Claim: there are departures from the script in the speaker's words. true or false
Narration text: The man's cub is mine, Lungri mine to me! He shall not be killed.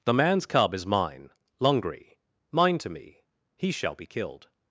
true